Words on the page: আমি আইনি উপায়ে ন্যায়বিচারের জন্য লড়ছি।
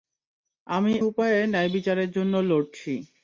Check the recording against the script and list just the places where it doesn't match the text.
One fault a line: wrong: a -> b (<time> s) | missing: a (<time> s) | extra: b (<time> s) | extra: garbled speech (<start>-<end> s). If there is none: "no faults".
missing: আইনি (0.9 s)